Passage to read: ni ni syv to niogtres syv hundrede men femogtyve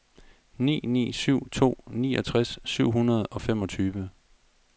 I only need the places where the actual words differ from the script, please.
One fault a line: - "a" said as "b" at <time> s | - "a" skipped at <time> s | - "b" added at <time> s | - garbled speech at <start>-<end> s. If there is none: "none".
- "men" said as "og" at 3.3 s